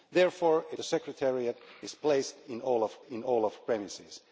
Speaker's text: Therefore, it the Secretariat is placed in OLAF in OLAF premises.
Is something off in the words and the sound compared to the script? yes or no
no